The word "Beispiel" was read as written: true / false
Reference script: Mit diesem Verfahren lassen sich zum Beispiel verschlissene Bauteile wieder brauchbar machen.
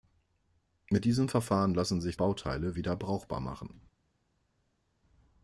false